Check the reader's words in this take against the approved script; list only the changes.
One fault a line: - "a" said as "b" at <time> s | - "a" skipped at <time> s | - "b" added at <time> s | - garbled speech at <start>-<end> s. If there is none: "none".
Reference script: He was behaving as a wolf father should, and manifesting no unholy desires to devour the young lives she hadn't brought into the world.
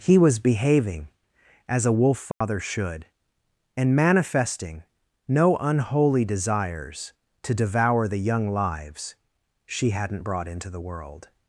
none